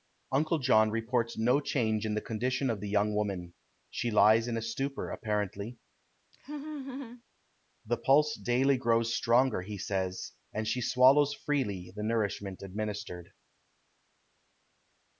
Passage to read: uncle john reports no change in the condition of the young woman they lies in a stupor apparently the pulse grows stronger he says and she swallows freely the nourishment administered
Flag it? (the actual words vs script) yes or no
yes